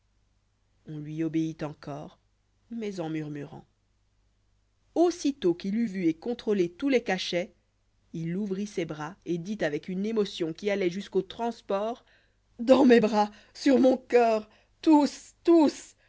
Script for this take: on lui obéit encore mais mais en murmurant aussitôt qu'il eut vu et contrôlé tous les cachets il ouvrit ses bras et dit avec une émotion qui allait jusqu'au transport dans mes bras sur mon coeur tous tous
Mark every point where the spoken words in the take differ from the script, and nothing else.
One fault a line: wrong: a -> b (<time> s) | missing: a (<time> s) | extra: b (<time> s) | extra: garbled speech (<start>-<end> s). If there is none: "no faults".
missing: mais (3.0 s)